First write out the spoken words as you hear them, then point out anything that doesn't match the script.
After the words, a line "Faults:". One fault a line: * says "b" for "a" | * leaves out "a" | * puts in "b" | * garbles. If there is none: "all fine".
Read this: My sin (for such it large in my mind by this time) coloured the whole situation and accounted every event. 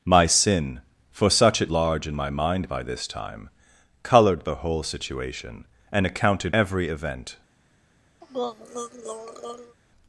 My sin (for such it large in my mind by this time) coloured the whole situation and accounted every event.
Faults:
all fine